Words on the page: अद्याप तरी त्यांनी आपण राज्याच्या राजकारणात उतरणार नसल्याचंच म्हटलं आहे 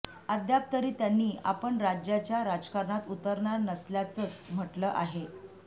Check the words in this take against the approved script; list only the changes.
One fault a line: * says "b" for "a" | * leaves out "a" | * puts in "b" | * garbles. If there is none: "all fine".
all fine